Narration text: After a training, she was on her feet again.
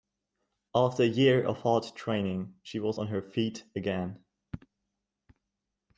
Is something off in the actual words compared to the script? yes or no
yes